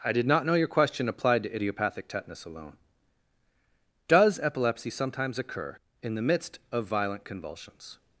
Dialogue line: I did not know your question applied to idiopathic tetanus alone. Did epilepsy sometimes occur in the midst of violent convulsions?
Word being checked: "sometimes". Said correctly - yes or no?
yes